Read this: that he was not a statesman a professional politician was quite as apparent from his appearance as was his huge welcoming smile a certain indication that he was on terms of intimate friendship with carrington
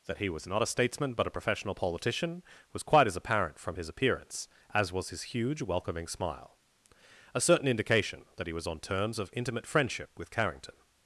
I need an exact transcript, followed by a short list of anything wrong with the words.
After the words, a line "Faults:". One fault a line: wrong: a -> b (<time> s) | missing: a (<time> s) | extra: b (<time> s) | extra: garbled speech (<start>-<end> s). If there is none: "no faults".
that he was not a statesman but a professional politician was quite as apparent from his appearance as was his huge welcoming smile a certain indication that he was on terms of intimate friendship with carrington
Faults:
extra: but (1.1 s)